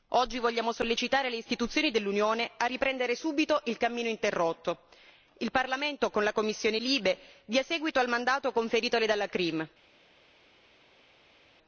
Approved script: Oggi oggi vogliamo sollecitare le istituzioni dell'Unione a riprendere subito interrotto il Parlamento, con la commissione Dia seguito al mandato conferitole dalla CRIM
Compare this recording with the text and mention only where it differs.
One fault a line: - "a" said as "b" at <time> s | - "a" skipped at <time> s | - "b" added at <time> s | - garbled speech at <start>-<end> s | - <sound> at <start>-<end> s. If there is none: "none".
- "oggi" skipped at 0.4 s
- "il cammino" added at 3.6 s
- "LIBE" added at 6.8 s